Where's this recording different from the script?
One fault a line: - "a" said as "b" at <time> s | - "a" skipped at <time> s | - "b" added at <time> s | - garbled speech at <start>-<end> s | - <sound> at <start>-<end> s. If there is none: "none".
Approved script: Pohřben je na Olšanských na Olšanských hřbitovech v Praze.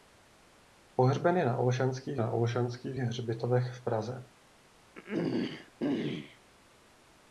- throat clearing at 5.0-6.4 s